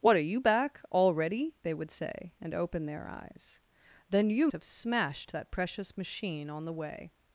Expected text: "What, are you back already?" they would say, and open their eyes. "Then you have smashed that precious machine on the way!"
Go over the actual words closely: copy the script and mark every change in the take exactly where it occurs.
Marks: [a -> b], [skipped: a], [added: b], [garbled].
"What, are you back already?" they would say, and open their eyes. "Then you have smashed that precious machine on the way!"